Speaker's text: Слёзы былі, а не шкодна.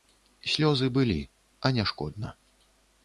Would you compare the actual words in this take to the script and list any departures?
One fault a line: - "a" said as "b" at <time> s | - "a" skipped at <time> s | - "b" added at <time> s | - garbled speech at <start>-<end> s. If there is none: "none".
none